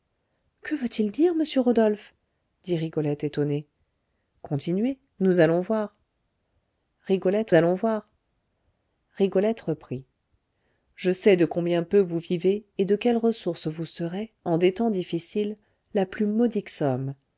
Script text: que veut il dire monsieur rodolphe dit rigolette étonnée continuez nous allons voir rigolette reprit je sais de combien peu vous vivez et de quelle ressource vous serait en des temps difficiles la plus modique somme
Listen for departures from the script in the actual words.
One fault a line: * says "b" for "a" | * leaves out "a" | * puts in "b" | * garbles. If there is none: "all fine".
* puts in "allons voir rigolette"